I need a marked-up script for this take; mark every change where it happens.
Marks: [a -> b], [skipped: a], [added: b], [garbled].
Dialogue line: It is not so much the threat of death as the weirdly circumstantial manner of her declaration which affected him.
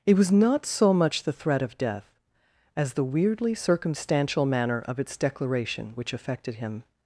It [is -> was] not so much the threat of death as the weirdly circumstantial manner of [her -> its] declaration which affected him.